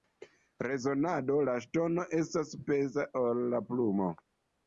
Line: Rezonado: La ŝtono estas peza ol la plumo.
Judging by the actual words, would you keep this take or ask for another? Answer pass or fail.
pass